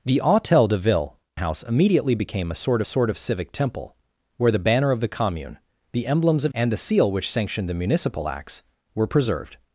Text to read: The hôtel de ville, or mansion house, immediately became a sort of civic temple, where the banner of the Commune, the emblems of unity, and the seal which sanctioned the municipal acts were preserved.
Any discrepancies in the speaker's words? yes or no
yes